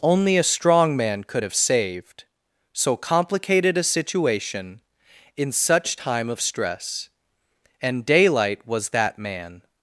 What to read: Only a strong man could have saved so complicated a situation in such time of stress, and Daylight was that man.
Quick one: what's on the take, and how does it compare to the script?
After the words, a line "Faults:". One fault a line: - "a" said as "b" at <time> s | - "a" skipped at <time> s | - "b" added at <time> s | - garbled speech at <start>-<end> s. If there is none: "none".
Only a strong man could have saved so complicated a situation in such time of stress, and Daylight was that man.
Faults:
none